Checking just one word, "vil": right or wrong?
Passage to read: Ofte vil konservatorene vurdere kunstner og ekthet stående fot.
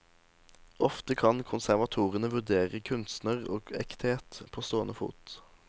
wrong